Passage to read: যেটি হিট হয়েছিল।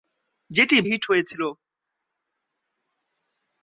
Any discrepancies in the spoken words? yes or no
no